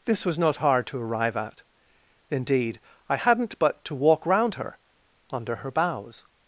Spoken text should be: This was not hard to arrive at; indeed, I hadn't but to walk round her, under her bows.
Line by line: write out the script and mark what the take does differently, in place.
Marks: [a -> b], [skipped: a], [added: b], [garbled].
This was not hard to arrive at; indeed, I hadn't but to walk round her, under her bows.